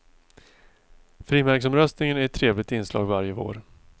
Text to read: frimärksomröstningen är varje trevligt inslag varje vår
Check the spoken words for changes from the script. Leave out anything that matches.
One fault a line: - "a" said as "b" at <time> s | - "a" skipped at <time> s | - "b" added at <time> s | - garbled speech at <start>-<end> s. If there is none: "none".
- "varje" said as "ett" at 2.2 s